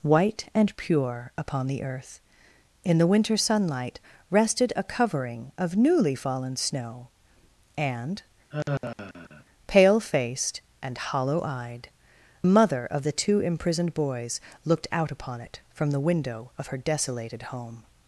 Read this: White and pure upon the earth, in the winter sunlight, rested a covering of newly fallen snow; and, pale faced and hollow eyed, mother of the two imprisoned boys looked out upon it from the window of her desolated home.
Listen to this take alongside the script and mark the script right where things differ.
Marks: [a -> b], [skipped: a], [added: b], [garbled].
White and pure upon the earth, in the winter sunlight, rested a covering of newly fallen snow; and, pale faced and hollow eyed, mother of the two imprisoned boys looked out upon it from the window of her desolated home.